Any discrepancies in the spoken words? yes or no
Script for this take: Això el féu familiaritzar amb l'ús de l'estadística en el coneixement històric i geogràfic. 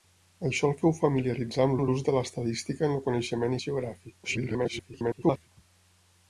yes